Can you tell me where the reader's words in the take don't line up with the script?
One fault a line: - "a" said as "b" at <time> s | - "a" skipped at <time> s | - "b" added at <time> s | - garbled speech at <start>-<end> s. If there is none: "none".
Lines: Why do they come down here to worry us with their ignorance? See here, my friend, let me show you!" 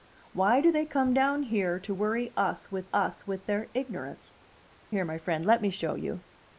- "us with" added at 2.9 s
- "See" skipped at 4.4 s